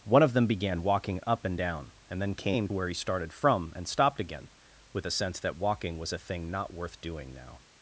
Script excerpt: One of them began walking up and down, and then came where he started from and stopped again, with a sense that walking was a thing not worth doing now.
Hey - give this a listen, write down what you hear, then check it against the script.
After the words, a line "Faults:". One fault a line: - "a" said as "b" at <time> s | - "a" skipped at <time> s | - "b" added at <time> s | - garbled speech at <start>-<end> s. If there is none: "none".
One of them began walking up and down, and then came where he started from and stopped again, with a sense that walking was a thing not worth doing now.
Faults:
none